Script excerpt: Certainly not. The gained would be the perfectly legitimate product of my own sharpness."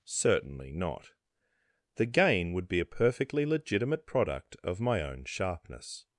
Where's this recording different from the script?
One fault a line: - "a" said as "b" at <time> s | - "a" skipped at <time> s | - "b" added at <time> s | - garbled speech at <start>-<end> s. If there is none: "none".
- "gained" said as "gain" at 2.1 s
- "the" said as "a" at 2.8 s